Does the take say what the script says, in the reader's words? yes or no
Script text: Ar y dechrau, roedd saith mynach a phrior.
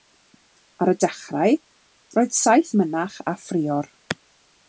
yes